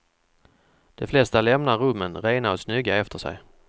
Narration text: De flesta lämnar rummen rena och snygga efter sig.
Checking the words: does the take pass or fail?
pass